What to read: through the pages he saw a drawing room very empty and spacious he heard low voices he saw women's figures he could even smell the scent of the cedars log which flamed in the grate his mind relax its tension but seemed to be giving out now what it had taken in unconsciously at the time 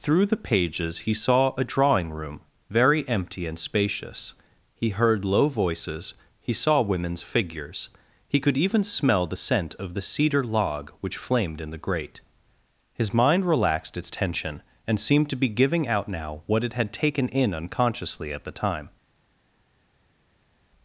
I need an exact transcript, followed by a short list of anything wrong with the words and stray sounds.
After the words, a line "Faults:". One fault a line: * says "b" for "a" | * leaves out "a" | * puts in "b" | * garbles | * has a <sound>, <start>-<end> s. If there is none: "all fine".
through the pages he saw a drawing room very empty and spacious he heard low voices he saw women's figures he could even smell the scent of the cedar log which flamed in the grate his mind relaxed its tension and seemed to be giving out now what it had taken in unconsciously at the time
Faults:
* says "cedar" for "cedars"
* says "relaxed" for "relax"
* says "and" for "but"